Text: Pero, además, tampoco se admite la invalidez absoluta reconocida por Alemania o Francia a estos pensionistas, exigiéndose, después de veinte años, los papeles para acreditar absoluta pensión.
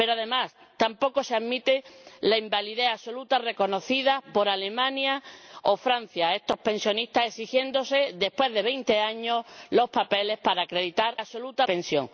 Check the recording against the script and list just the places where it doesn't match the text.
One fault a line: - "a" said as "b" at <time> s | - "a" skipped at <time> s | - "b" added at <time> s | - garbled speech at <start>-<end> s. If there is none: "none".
none